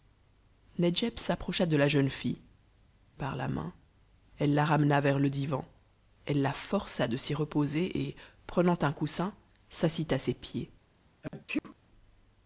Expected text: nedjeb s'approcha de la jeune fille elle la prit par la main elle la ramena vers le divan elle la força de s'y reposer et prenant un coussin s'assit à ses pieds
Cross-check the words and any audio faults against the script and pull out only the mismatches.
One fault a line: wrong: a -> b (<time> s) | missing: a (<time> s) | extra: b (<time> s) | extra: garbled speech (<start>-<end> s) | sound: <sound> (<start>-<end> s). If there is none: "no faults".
missing: elle la prit (2.4 s)
sound: sneeze (11.2-11.8 s)